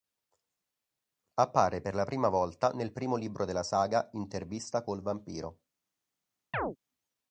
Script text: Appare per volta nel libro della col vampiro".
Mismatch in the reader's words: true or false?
true